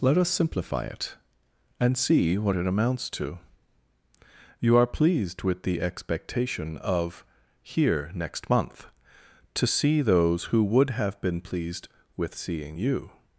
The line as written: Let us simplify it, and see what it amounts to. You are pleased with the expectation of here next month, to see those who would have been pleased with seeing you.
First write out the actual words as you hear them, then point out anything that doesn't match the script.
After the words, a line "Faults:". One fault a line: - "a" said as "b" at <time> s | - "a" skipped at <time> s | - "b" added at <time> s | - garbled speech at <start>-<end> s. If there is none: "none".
Let us simplify it, and see what it amounts to. You are pleased with the expectation of here next month, to see those who would have been pleased with seeing you.
Faults:
none